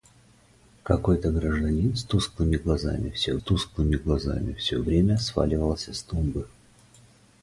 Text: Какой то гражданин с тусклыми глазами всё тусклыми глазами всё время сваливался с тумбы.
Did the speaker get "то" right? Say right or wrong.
right